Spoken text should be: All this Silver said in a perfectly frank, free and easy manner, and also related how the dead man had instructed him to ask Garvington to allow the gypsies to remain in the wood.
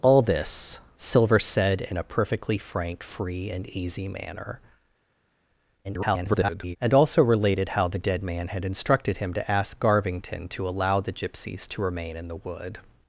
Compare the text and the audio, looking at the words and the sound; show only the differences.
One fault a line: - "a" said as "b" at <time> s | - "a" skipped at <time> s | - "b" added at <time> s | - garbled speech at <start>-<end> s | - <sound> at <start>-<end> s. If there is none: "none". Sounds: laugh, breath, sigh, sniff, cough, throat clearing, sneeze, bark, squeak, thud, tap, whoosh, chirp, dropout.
- garbled speech at 5.8-6.8 s